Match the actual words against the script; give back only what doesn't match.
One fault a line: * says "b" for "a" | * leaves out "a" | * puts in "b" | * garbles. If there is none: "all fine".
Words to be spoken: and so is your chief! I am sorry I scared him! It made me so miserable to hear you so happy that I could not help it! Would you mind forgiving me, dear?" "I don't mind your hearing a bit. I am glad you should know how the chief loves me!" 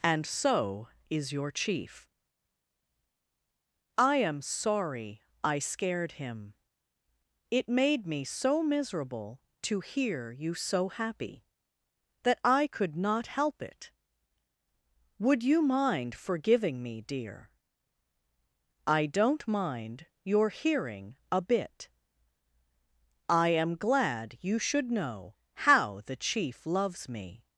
all fine